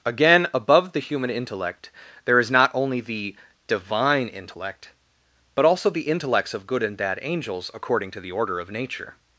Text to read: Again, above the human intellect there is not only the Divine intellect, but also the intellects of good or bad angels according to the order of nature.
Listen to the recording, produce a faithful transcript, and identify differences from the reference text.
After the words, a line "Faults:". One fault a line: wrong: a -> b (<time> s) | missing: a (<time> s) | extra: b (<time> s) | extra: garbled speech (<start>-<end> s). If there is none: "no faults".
Again, above the human intellect there is not only the Divine intellect, but also the intellects of good and bad angels according to the order of nature.
Faults:
wrong: or -> and (6.8 s)